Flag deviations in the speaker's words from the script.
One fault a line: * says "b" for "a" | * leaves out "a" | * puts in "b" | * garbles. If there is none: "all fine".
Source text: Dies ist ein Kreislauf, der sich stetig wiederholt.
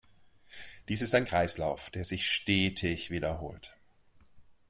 all fine